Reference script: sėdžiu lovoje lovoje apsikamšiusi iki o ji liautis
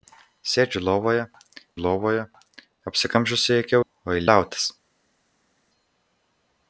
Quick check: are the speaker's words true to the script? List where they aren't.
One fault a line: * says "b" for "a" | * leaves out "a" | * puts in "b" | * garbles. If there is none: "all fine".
all fine